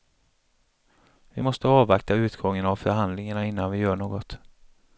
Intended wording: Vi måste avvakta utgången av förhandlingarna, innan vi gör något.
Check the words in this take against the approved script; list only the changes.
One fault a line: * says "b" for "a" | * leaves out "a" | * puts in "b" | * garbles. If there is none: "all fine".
all fine